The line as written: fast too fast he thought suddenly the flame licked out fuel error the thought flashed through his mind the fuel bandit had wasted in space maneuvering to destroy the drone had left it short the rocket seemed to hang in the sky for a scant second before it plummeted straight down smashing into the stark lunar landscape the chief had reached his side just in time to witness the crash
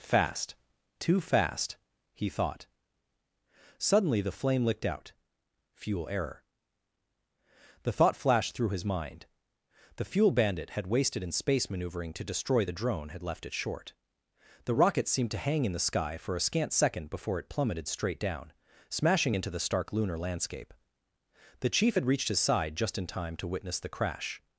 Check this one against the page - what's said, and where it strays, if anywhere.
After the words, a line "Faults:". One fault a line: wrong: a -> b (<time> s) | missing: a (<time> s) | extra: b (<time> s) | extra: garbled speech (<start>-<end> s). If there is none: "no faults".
fast too fast he thought suddenly the flame licked out fuel error the thought flashed through his mind the fuel bandit had wasted in space maneuvering to destroy the drone had left it short the rocket seemed to hang in the sky for a scant second before it plummeted straight down smashing into the stark lunar landscape the chief had reached his side just in time to witness the crash
Faults:
no faults